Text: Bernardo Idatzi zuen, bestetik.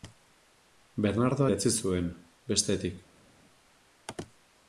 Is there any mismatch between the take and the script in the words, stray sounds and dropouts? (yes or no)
no